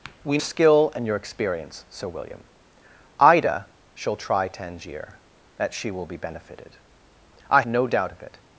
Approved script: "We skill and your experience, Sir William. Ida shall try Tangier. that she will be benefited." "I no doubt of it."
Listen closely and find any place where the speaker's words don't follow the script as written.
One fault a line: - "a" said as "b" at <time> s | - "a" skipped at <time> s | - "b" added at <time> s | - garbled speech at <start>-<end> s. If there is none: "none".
none